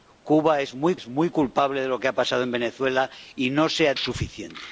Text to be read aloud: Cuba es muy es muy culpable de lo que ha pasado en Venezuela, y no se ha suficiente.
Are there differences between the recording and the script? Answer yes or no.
no